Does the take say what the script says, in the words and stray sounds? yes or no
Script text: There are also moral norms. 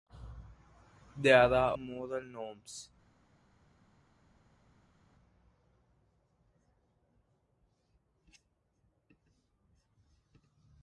no